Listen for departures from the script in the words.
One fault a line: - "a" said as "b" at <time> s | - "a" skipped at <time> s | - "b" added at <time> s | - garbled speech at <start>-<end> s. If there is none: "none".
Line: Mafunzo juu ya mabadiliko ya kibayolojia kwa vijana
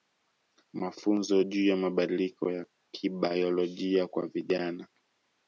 none